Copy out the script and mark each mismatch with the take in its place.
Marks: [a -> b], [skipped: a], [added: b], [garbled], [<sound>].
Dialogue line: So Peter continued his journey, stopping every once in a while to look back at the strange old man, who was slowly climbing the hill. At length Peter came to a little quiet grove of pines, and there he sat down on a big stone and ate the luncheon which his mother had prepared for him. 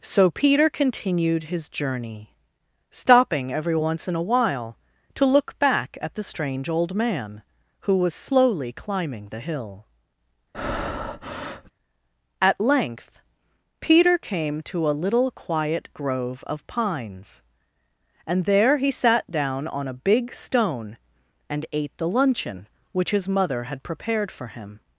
So Peter continued his journey, stopping every once in a while to look back at the strange old man, who was slowly climbing the hill. [breath] At length Peter came to a little quiet grove of pines, and there he sat down on a big stone and ate the luncheon which his mother had prepared for him.